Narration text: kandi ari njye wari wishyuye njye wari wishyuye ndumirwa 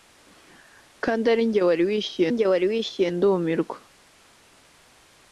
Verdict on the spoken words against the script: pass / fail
pass